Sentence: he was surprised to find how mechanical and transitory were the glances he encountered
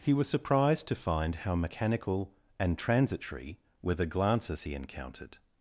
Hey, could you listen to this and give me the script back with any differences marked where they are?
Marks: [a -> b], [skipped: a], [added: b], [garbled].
he was surprised to find how mechanical and transitory were the glances he encountered